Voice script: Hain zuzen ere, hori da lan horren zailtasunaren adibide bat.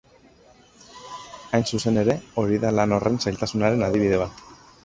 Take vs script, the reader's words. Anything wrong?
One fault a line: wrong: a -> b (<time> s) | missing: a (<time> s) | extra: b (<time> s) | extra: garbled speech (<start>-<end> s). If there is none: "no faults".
no faults